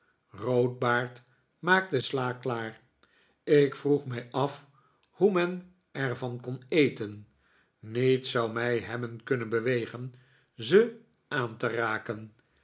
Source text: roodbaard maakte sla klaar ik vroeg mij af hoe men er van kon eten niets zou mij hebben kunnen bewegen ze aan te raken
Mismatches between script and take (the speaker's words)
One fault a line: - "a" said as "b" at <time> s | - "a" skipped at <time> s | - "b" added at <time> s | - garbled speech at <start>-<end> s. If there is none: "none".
none